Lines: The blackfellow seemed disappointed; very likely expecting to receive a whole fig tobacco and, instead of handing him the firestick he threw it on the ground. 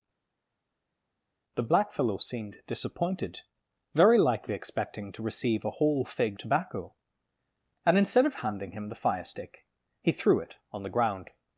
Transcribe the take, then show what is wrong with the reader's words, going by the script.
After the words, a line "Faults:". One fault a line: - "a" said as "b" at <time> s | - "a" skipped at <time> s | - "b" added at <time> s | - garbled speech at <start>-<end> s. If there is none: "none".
The blackfellow seemed disappointed; very likely expecting to receive a whole fig tobacco and, instead of handing him the firestick he threw it on the ground.
Faults:
none